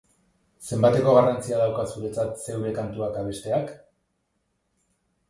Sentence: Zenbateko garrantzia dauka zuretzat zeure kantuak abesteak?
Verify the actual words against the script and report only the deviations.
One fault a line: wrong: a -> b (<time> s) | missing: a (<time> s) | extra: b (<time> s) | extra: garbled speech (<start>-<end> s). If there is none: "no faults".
no faults